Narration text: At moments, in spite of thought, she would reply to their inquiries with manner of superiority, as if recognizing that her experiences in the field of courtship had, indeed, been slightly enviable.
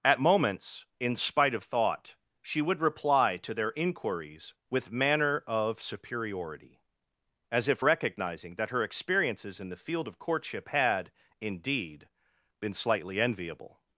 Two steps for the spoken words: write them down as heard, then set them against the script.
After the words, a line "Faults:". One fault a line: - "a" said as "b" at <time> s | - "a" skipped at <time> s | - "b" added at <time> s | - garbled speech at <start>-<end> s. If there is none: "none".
At moments, in spite of thought, she would reply to their inquiries with manner of superiority, as if recognizing that her experiences in the field of courtship had, indeed, been slightly enviable.
Faults:
none